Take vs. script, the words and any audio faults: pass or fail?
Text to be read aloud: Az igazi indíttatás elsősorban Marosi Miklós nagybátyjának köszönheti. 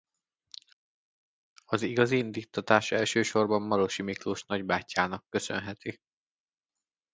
pass